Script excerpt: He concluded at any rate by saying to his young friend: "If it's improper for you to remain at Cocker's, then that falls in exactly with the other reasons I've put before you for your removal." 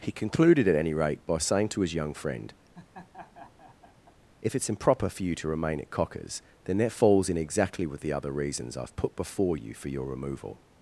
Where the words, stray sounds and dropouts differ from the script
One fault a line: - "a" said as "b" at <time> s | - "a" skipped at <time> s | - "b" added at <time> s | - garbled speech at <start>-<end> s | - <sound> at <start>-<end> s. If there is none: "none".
- laugh at 2.7-4.1 s